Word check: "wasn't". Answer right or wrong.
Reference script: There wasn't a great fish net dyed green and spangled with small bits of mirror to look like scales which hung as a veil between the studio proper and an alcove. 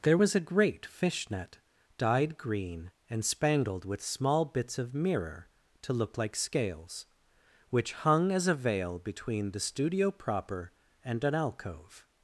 wrong